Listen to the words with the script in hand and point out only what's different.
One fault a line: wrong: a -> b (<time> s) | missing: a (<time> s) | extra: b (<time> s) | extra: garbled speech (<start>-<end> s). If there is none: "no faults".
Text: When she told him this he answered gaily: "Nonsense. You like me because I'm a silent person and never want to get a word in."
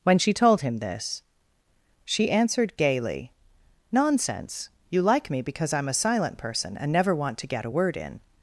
wrong: he -> she (2.0 s)